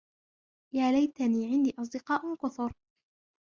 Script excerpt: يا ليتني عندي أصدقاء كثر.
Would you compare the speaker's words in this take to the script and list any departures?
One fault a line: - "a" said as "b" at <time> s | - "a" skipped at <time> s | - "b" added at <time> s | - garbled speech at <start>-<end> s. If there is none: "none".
none